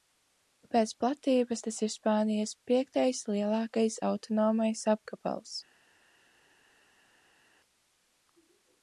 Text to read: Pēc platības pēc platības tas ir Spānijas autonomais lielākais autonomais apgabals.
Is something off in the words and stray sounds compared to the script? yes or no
yes